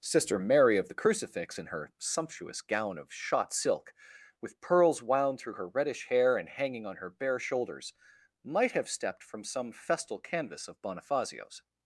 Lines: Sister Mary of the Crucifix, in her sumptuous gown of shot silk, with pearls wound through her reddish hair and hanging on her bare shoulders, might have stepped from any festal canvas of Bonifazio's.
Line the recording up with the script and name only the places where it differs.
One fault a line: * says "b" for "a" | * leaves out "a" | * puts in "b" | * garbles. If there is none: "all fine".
* says "some" for "any"